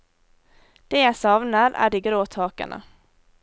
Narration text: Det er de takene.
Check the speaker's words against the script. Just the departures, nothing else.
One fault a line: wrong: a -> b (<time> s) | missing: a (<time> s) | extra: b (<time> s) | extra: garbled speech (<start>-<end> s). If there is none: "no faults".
extra: jeg savner (1.0 s)
extra: grå (2.1 s)